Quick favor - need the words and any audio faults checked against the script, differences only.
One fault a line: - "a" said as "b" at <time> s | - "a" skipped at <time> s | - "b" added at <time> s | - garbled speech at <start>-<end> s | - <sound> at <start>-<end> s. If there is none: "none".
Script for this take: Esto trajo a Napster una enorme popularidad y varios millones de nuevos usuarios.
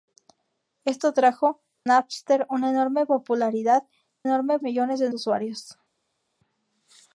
- "a" skipped at 1.6 s
- "varios" said as "enorme" at 4.2 s
- "nuevos" skipped at 5.1 s